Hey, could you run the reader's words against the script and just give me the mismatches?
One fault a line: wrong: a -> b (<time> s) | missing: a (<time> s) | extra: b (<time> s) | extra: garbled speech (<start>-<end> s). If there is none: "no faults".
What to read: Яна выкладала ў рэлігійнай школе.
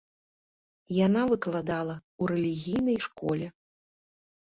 no faults